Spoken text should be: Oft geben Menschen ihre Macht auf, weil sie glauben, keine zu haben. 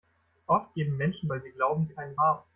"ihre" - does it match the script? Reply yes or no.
no